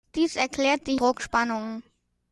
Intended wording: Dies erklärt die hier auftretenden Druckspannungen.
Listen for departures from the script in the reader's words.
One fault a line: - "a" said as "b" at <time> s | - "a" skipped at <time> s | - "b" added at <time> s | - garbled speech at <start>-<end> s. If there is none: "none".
- "hier auftretenden" skipped at 0.9 s